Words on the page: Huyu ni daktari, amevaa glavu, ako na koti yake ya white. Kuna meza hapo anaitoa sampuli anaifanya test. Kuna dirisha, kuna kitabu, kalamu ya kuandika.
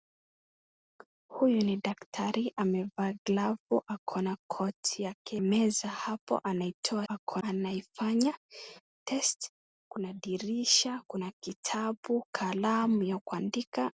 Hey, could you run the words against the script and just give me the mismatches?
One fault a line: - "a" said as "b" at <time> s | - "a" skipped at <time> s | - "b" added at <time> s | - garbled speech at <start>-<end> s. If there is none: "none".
- "ya white Kuna" skipped at 5.4 s
- "sampuli" said as "ako" at 7.1 s